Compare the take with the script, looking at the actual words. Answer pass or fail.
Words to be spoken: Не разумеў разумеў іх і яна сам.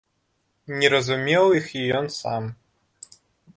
fail